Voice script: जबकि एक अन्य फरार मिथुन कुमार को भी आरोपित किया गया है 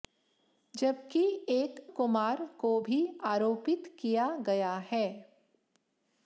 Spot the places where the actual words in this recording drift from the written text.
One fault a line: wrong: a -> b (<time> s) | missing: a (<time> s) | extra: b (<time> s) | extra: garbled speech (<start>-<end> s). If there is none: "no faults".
missing: अन्य फरार मिथुन (1.9 s)